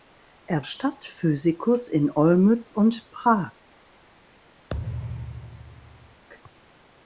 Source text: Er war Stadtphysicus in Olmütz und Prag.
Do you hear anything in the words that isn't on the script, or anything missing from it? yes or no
yes